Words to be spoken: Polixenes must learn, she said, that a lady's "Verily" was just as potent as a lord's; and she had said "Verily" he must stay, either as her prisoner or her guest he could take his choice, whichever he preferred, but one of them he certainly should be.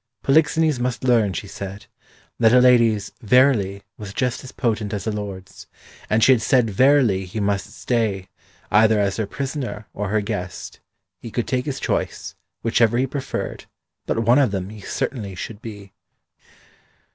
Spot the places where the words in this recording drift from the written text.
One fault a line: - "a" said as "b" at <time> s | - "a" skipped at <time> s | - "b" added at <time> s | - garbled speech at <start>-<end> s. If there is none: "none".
none